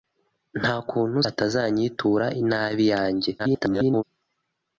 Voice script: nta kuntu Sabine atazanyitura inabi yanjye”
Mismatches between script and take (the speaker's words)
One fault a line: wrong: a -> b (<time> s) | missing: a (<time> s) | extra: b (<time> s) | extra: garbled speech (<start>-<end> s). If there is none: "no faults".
missing: Sabine (1.2 s)
extra: garbled speech (3.4-4.0 s)